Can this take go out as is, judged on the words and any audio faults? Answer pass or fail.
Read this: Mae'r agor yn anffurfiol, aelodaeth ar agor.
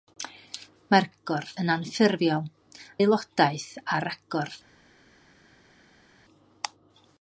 pass